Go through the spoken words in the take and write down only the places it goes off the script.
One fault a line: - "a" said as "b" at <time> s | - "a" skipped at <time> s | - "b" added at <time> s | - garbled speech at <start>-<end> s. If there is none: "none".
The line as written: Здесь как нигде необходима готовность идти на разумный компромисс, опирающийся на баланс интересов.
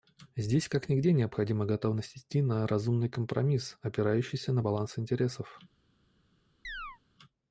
none